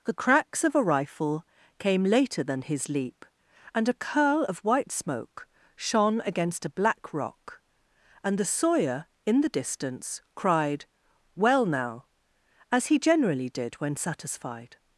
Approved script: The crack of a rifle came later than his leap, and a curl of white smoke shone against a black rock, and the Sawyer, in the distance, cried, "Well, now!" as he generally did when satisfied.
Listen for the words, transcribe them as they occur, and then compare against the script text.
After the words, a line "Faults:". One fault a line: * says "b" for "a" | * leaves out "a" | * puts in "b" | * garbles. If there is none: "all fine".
The cracks of a rifle came later than his leap, and a curl of white smoke shone against a black rock, and the Sawyer, in the distance, cried, "Well, now!" as he generally did when satisfied.
Faults:
* says "cracks" for "crack"